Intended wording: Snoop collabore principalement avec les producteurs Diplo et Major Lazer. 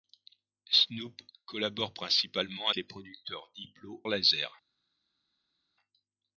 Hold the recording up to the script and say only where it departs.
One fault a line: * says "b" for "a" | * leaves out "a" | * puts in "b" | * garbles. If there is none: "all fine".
* leaves out "avec"
* leaves out "et Major"